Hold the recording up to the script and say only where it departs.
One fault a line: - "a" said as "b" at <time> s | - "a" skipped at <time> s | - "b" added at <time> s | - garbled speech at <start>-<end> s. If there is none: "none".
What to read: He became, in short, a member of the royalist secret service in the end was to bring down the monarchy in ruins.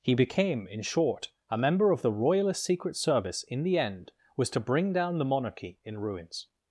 none